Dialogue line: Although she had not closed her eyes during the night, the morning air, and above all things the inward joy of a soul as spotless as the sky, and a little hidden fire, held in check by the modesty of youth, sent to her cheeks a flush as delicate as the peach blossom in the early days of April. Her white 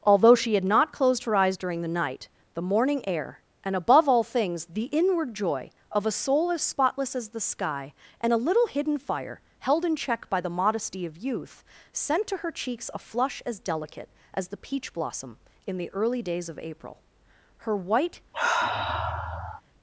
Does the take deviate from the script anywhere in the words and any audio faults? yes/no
yes